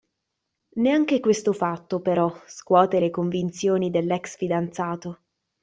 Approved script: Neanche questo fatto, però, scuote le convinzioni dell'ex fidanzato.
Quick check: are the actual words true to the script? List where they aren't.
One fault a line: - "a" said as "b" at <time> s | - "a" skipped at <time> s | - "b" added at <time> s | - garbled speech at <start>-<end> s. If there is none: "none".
none